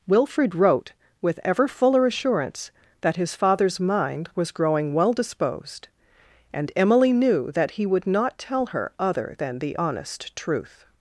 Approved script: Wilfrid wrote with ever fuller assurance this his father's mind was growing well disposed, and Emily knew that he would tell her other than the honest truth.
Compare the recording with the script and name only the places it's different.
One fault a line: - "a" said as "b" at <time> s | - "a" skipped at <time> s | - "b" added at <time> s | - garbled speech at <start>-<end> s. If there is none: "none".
- "this" said as "that" at 3.0 s
- "not" added at 8.1 s